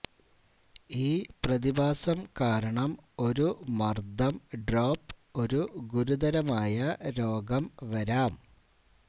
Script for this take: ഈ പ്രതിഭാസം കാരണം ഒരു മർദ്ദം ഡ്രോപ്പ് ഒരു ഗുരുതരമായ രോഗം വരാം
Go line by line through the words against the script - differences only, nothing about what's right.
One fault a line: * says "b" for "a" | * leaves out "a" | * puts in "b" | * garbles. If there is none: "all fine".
all fine